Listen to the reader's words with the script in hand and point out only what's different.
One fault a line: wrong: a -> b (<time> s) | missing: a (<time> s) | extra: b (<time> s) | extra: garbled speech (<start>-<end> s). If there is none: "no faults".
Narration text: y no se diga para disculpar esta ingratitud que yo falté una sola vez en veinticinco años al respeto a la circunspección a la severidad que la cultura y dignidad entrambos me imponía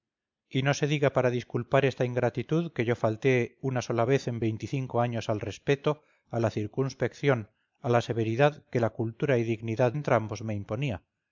no faults